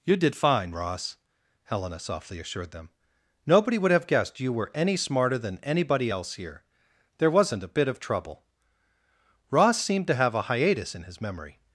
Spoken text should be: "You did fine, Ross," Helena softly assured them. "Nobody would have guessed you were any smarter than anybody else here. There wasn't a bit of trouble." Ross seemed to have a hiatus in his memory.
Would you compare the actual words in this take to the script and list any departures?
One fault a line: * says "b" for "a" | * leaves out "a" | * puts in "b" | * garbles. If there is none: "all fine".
all fine